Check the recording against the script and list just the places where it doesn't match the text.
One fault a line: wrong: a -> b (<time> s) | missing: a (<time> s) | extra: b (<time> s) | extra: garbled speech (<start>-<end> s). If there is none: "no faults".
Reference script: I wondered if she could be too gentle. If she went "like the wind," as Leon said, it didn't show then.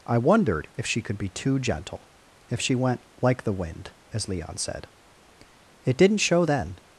no faults